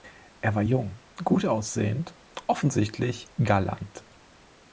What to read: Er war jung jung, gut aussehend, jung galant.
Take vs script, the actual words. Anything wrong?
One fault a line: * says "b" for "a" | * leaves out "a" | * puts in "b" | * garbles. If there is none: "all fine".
* leaves out "jung"
* says "offensichtlich" for "jung"